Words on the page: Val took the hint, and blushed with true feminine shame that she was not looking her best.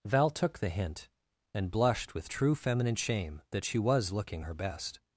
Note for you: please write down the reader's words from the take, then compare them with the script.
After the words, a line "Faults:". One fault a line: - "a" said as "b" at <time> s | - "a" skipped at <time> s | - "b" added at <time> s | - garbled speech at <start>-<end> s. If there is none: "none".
Val took the hint, and blushed with true feminine shame that she was looking her best.
Faults:
- "not" skipped at 4.1 s